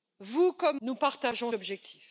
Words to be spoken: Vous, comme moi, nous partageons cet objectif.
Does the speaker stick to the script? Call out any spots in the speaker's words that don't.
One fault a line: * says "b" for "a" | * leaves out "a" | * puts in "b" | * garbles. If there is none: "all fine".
* leaves out "moi"
* leaves out "cet"